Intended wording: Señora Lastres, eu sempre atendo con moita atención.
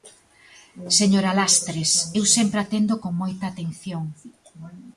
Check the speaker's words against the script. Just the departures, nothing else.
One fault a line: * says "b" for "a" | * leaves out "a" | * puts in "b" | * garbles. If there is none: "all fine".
all fine